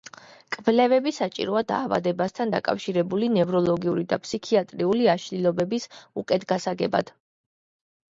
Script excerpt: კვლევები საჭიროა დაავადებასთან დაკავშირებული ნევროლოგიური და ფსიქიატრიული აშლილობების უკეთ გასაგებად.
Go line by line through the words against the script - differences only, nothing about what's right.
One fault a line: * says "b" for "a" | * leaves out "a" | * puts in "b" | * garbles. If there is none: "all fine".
all fine